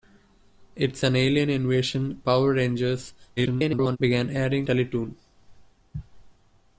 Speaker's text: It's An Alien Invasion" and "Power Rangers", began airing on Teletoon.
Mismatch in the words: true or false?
true